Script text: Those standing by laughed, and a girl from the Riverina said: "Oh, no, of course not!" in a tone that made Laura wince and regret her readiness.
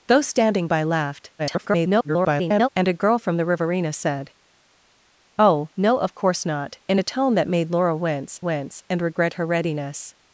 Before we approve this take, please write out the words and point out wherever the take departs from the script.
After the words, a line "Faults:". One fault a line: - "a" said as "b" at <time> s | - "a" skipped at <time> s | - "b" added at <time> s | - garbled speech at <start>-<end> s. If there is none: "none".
Those standing by laughed, [garbled] and a girl from the Riverina said: "Oh, no, of course not!" in a tone that made Laura wince wince and regret her readiness.
Faults:
- garbled speech at 1.4-2.7 s
- "wince" added at 8.4 s